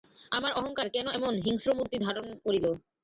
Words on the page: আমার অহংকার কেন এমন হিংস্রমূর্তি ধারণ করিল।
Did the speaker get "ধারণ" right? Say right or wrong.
right